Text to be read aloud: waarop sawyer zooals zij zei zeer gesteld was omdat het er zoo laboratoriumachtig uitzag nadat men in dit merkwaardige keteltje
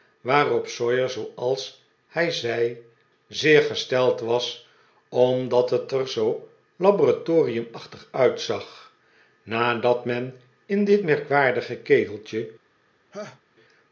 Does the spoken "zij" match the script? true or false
false